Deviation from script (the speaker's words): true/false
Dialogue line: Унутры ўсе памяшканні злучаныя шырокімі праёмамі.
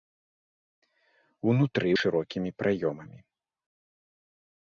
true